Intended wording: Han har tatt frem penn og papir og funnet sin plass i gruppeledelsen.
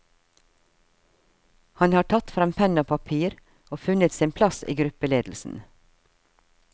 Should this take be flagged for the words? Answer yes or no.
no